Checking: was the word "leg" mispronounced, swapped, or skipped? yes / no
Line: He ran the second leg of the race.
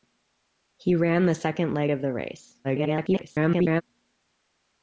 no